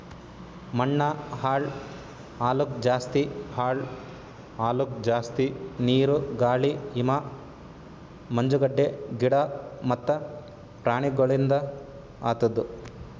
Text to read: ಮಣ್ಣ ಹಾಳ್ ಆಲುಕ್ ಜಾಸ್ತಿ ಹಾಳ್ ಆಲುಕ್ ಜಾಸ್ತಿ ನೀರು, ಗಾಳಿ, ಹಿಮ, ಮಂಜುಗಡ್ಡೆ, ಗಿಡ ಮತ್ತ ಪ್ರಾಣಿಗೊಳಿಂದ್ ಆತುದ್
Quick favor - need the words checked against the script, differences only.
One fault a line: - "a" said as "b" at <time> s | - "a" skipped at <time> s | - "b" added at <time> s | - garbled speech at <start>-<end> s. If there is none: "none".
none